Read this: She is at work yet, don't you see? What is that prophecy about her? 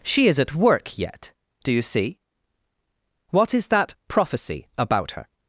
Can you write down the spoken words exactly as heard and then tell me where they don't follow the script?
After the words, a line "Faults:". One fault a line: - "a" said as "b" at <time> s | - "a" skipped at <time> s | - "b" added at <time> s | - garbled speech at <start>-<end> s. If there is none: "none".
She is at work yet, do you see? What is that prophecy about her?
Faults:
- "don't" said as "do" at 1.6 s